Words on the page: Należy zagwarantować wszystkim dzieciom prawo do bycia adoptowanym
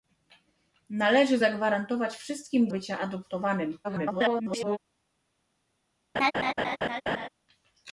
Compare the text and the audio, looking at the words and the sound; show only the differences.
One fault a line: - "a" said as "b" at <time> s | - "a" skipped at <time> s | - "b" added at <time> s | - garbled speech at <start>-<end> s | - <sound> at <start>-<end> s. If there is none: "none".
- "dzieciom prawo do" skipped at 2.7 s
- garbled speech at 3.8-4.8 s
- laugh at 6.1-7.3 s